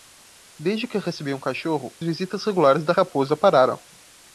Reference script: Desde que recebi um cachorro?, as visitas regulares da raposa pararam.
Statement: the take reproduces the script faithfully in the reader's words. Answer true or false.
false